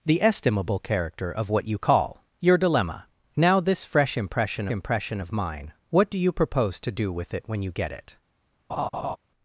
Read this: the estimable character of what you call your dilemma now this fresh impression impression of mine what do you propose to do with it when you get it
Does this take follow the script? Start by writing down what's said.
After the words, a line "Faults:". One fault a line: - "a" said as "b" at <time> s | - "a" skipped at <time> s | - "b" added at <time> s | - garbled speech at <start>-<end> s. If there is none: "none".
the estimable character of what you call your dilemma now this fresh impression impression of mine what do you propose to do with it when you get it
Faults:
none